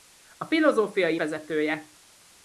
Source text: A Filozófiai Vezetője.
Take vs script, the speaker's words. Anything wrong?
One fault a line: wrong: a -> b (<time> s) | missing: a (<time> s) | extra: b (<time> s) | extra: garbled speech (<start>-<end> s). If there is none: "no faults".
no faults